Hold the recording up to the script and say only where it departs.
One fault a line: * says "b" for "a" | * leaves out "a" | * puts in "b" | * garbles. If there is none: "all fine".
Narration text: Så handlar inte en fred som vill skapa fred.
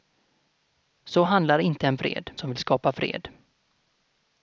all fine